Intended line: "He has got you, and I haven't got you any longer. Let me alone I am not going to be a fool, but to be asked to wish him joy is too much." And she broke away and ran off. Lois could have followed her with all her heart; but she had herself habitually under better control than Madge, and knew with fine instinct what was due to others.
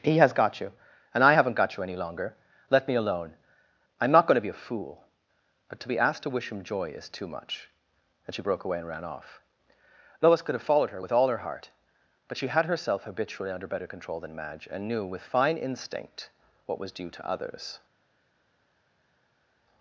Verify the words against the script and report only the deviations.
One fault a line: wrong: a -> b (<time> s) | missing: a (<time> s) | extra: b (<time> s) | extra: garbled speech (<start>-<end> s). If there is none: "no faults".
no faults